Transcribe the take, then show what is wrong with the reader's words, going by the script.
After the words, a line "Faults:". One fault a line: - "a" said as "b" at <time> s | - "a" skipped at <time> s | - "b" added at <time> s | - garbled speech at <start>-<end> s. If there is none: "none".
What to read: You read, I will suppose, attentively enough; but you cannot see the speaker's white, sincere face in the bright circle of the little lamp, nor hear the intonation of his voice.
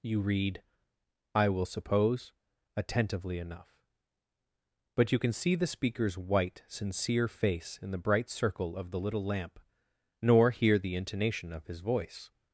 You read, I will suppose, attentively enough; but you can see the speaker's white, sincere face in the bright circle of the little lamp, nor hear the intonation of his voice.
Faults:
- "cannot" said as "can" at 5.2 s